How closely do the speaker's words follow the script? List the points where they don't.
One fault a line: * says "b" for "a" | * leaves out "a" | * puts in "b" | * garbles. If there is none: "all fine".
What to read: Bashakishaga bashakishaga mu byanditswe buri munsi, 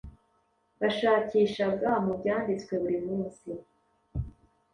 * leaves out "bashakishaga"